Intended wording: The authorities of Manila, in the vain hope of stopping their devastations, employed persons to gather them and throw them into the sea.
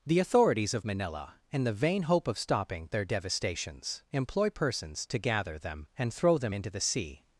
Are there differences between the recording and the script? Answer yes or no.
yes